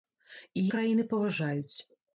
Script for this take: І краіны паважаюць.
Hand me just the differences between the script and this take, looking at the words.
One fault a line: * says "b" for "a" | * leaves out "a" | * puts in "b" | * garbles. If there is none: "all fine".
all fine